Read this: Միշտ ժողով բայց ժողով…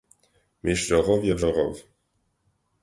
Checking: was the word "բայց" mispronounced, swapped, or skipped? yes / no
yes